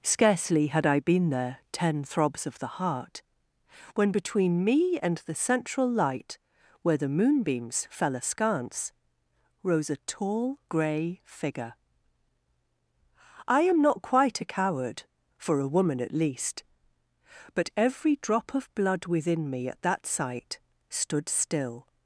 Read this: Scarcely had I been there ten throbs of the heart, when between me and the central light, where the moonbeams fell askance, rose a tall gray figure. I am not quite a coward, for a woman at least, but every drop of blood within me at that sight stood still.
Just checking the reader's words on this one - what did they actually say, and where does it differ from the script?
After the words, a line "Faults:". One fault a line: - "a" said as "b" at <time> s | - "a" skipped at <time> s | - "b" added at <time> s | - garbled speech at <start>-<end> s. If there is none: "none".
Scarcely had I been there ten throbs of the heart, when between me and the central light, where the moonbeams fell askance, rose a tall gray figure. I am not quite a coward, for a woman at least, but every drop of blood within me at that sight stood still.
Faults:
none